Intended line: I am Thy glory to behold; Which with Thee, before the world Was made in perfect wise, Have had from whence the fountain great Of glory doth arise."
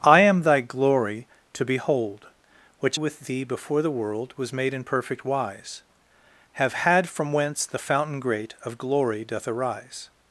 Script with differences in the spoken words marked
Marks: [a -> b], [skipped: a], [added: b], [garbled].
I am Thy glory to behold; Which with Thee, before the world Was made in perfect wise, Have had from whence the fountain great Of glory doth arise."